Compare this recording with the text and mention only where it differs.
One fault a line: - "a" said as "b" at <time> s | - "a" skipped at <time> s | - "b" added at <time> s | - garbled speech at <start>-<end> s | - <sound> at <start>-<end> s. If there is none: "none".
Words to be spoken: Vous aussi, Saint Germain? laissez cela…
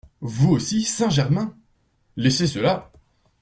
none